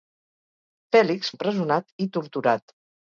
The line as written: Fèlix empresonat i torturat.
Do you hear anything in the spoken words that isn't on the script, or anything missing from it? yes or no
no